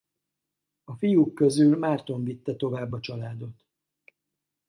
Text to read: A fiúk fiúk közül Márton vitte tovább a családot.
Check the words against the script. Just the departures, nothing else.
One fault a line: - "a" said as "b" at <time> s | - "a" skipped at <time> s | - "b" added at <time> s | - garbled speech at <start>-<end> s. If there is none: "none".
- "fiúk" skipped at 1.4 s